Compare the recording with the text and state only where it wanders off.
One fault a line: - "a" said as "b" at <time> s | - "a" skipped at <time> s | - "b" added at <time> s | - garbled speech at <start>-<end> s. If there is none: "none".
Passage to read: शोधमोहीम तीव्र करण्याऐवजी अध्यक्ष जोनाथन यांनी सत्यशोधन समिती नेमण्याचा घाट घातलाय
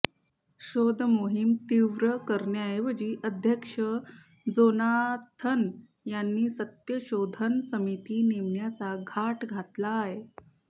none